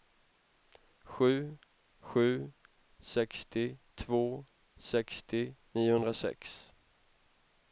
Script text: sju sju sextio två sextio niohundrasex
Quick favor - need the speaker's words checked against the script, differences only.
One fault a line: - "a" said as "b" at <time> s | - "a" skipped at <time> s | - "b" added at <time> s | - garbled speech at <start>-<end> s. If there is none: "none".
none